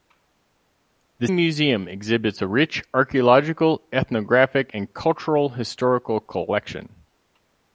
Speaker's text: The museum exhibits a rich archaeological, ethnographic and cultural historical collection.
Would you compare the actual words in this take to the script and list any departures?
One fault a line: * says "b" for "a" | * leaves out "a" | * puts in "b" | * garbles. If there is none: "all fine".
all fine